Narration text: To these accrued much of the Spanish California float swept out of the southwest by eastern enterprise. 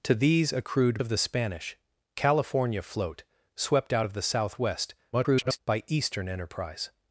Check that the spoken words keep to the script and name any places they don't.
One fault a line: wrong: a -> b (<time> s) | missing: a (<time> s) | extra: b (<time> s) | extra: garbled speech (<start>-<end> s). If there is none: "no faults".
missing: much (1.0 s)
extra: garbled speech (5.1-5.6 s)